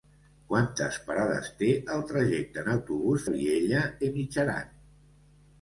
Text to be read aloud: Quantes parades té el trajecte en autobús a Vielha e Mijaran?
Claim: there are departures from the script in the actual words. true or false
false